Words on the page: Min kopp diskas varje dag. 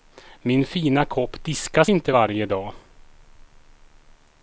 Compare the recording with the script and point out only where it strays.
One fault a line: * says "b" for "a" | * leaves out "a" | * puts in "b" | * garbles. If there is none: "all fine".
* puts in "fina"
* puts in "inte"